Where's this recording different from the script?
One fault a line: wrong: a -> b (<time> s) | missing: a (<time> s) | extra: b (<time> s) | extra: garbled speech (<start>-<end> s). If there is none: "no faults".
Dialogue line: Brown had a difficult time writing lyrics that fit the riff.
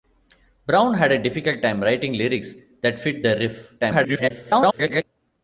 extra: garbled speech (3.8-5.0 s)